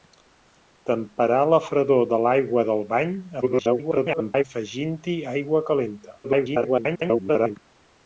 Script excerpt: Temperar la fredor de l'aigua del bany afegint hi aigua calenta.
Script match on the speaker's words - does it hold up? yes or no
no